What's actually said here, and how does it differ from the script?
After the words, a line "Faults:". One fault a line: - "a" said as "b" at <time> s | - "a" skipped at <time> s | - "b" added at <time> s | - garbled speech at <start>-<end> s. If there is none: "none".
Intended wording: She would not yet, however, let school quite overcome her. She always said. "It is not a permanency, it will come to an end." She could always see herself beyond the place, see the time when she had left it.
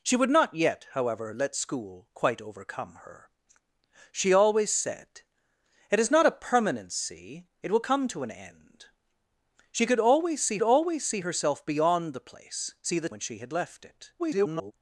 She would not yet, however, let school quite overcome her. She always said. "It is not a permanency, it will come to an end." She could always see always see herself beyond the place, see the when she had left it. [garbled]
Faults:
- "always see" added at 10.6 s
- "time" skipped at 13.1 s
- garbled speech at 14.2-14.7 s